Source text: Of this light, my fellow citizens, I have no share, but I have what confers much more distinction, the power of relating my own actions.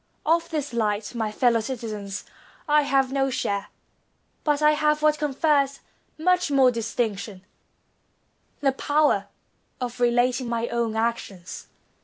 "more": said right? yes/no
yes